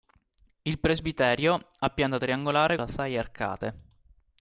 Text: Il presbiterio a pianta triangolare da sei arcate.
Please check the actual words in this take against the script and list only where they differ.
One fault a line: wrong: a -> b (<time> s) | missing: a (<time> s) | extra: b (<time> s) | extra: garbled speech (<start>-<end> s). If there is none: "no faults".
no faults